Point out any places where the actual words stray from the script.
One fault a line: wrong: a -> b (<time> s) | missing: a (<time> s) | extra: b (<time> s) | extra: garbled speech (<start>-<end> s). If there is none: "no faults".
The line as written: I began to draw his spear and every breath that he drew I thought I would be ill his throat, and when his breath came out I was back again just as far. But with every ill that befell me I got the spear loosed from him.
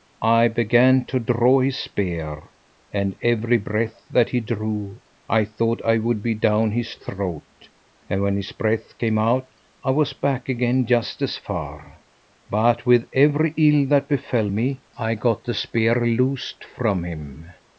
wrong: ill -> down (6.3 s)